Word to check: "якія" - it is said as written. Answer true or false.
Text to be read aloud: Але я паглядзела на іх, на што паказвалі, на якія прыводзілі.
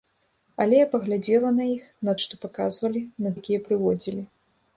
true